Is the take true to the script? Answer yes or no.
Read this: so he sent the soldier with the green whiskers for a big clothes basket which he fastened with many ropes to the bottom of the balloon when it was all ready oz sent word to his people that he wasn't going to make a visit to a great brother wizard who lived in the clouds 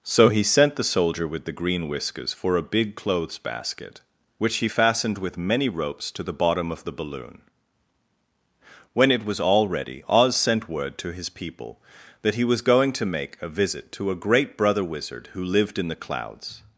no